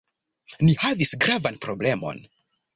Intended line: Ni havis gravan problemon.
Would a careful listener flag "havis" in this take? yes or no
no